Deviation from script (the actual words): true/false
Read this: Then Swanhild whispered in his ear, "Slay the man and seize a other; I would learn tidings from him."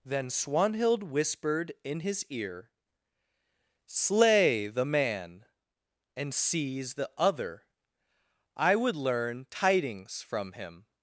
true